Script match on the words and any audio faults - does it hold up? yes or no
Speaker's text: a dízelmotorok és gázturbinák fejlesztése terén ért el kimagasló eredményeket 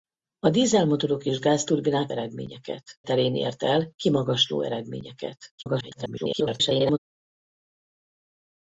no